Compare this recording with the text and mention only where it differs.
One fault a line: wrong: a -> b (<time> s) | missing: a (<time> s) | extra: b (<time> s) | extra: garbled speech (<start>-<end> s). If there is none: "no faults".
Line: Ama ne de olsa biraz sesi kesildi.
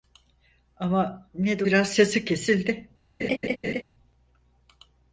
missing: olsa (1.6 s)